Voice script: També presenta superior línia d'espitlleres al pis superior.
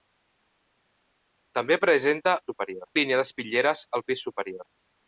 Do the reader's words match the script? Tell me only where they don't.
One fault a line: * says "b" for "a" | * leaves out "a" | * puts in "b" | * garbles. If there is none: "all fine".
all fine